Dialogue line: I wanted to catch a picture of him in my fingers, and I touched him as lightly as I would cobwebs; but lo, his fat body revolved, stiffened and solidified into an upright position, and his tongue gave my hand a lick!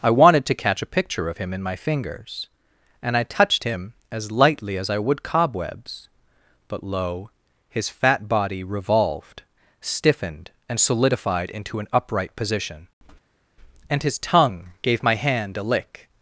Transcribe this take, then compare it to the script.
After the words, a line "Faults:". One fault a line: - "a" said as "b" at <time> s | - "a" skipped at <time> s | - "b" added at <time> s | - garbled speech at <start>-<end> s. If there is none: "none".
I wanted to catch a picture of him in my fingers, and I touched him as lightly as I would cobwebs; but lo, his fat body revolved, stiffened and solidified into an upright position, and his tongue gave my hand a lick!
Faults:
none